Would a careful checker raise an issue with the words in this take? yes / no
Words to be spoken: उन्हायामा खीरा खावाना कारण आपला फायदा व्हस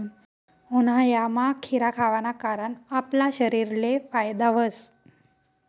yes